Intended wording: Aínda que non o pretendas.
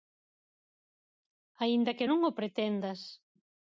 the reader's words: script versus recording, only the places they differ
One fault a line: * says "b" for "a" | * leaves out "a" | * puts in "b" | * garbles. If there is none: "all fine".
all fine